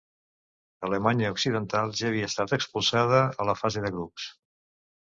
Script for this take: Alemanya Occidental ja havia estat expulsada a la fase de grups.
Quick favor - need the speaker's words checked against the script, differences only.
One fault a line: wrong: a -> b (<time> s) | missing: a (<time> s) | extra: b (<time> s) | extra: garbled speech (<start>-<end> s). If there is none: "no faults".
no faults